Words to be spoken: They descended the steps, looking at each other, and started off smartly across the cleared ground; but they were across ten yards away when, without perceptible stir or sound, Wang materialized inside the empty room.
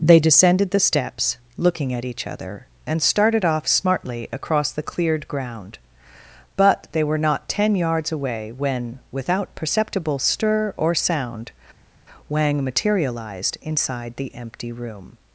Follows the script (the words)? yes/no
no